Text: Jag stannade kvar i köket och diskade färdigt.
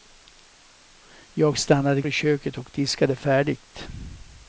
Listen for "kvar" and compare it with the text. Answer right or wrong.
wrong